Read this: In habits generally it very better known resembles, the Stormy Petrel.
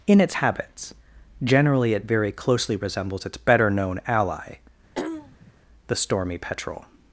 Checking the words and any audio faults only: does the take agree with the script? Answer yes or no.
no